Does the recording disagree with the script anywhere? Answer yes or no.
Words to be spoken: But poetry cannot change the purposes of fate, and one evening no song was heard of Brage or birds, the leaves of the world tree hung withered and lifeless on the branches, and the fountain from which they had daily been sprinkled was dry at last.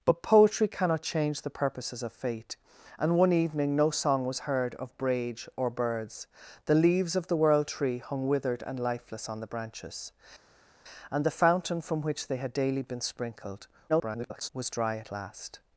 yes